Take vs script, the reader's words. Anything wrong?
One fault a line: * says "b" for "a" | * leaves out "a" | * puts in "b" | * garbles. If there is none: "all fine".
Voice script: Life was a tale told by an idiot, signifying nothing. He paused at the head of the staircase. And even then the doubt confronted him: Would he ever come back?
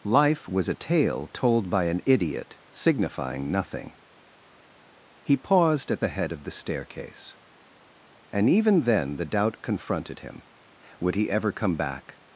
all fine